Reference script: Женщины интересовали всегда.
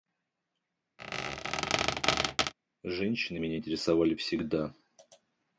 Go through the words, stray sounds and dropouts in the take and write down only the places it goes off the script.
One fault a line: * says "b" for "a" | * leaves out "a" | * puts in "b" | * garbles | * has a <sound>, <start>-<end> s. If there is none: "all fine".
* has a squeak, 1.0-2.5 s
* puts in "меня"